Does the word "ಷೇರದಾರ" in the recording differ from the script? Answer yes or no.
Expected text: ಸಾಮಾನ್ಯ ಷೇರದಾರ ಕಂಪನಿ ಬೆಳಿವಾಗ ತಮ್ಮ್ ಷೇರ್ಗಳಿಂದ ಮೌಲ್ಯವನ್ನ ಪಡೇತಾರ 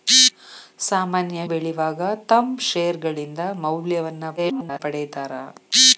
yes